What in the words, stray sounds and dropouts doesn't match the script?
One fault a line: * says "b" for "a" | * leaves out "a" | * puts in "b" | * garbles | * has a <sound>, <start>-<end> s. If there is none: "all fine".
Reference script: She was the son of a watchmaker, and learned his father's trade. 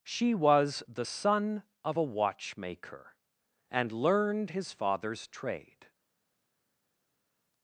all fine